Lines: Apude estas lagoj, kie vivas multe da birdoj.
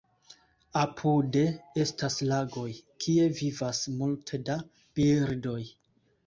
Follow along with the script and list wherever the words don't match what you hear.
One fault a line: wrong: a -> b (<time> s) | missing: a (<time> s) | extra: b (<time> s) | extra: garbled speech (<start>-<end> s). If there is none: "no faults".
no faults